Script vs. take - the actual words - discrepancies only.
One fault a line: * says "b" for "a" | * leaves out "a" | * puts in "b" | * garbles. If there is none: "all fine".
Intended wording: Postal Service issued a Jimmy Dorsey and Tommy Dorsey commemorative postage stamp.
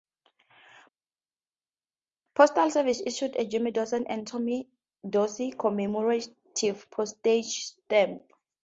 all fine